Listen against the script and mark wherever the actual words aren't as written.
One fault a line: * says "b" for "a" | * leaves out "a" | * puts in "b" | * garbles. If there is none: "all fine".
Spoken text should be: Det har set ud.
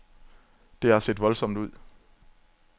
* puts in "voldsomt"